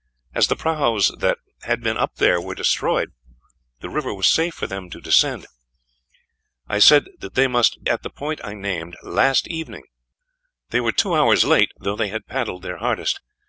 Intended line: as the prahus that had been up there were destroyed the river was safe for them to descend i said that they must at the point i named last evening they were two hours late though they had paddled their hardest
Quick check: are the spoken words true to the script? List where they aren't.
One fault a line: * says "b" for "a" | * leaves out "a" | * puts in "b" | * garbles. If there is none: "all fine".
all fine